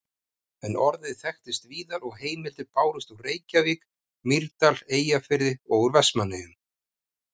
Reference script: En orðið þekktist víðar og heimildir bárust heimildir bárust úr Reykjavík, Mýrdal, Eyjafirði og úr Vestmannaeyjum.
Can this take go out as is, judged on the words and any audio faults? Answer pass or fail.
fail